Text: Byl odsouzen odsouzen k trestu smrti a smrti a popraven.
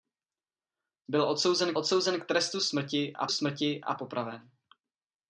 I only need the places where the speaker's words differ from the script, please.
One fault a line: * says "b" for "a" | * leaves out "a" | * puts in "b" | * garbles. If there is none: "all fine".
all fine